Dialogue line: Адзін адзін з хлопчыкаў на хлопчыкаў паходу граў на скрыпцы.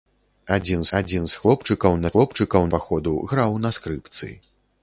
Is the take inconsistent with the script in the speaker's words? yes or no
no